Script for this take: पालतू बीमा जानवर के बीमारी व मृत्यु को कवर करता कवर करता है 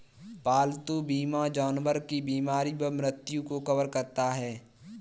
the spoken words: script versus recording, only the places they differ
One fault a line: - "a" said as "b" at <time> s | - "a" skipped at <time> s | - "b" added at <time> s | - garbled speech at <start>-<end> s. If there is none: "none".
- "के" said as "की" at 2.1 s
- "कवर करता" skipped at 4.3 s